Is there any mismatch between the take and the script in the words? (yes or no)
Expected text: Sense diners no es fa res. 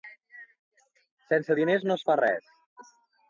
no